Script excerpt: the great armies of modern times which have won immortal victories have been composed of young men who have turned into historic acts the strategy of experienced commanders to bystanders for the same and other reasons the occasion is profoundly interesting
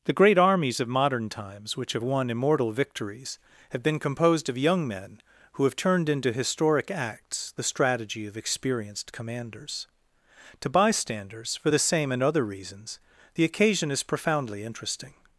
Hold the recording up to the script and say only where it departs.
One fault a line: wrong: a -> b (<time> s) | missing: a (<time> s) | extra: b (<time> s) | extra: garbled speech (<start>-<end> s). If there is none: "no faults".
no faults